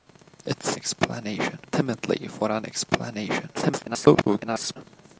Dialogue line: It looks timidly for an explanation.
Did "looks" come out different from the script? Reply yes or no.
yes